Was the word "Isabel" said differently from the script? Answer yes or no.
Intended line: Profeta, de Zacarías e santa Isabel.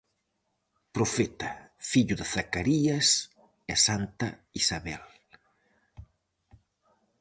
no